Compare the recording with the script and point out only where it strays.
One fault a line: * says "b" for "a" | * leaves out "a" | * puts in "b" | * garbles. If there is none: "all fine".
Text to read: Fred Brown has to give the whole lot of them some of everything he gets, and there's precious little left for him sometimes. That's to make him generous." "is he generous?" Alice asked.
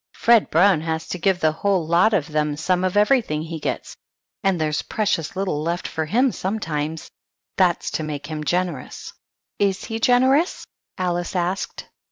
all fine